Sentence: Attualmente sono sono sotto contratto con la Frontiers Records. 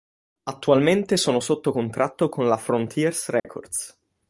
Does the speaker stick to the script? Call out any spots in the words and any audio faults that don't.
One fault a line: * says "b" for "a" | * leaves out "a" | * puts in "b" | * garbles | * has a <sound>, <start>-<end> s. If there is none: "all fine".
* leaves out "sono"
* has a dropout, 3.4-3.4 s